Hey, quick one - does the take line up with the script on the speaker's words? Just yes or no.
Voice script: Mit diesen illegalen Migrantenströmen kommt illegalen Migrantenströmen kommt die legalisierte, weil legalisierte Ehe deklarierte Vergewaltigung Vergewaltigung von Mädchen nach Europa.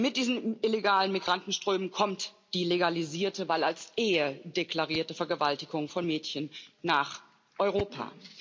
no